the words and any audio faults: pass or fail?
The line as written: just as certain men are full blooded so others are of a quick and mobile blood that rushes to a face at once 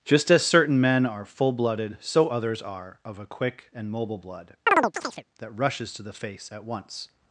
fail